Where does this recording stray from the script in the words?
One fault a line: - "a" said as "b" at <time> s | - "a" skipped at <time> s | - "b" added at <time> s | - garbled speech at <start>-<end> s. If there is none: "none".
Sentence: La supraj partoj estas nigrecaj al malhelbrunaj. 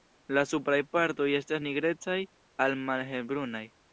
none